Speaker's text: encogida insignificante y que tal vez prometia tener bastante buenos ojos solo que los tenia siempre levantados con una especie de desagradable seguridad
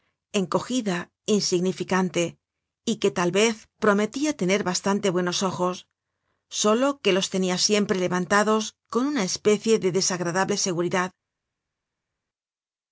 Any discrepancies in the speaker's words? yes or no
no